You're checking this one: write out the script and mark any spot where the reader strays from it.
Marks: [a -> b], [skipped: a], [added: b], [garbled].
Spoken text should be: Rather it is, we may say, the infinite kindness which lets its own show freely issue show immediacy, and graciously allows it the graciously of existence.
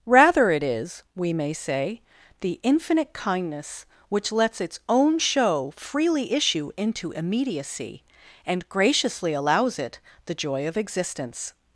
Rather it is, we may say, the infinite kindness which lets its own show freely issue [show -> into] immediacy, and graciously allows it the [graciously -> joy] of existence.